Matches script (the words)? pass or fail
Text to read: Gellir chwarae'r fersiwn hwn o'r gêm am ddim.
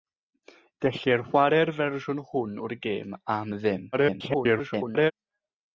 fail